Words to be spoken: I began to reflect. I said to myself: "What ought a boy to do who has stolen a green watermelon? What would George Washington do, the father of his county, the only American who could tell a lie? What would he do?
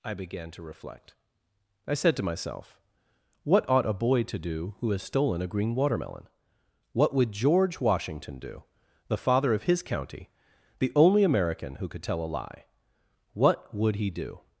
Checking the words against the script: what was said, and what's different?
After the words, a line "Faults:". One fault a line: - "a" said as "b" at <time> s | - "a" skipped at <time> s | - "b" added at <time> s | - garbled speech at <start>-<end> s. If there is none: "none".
I began to reflect. I said to myself: "What ought a boy to do who has stolen a green watermelon? What would George Washington do, the father of his county, the only American who could tell a lie? What would he do?
Faults:
none